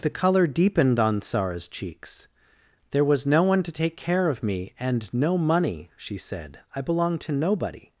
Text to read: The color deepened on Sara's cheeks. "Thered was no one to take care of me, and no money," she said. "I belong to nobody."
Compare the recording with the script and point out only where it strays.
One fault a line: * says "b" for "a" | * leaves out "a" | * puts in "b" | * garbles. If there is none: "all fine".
* says "There" for "Thered"